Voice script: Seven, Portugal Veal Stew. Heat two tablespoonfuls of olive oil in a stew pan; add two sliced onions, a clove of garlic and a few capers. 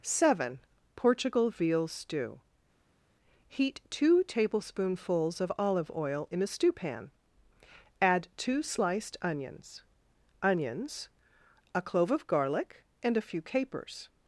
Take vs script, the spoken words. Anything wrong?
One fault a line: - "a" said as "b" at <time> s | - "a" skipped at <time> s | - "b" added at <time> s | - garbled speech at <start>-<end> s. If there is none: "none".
- "onions" added at 10.4 s